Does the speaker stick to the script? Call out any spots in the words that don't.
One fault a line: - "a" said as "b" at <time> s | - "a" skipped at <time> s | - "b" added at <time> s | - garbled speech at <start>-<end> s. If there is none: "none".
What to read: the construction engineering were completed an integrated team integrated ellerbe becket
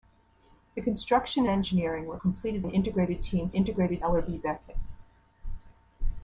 none